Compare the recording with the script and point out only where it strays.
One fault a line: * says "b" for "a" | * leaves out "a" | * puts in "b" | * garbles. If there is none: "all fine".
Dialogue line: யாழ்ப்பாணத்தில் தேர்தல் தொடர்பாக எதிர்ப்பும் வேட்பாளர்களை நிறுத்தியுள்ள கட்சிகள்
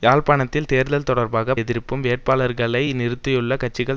all fine